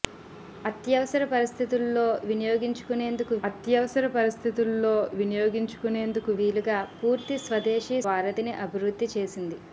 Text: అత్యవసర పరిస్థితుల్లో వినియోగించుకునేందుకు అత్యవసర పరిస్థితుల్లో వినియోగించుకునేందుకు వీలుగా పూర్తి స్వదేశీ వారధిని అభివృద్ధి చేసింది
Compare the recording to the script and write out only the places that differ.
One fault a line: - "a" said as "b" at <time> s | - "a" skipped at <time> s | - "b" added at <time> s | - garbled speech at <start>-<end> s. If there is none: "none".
none